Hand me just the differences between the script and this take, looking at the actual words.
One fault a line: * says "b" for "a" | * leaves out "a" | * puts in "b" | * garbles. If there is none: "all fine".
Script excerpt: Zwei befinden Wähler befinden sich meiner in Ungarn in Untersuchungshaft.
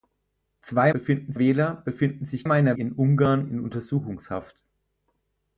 all fine